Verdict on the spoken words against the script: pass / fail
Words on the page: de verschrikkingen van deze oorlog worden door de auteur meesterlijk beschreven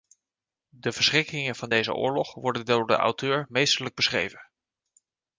pass